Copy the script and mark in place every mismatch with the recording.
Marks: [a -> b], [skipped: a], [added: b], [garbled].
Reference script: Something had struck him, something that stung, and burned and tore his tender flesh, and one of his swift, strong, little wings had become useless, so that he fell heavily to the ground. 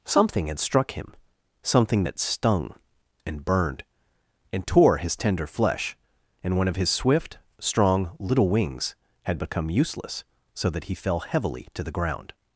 Something had struck him, something that stung, and burned and tore his tender flesh, and one of his swift, strong, little wings had become useless, so that he fell heavily to the ground.